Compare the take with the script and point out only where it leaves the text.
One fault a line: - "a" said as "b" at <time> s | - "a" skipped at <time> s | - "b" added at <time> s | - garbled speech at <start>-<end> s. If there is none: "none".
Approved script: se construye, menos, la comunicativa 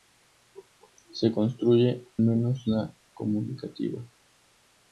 none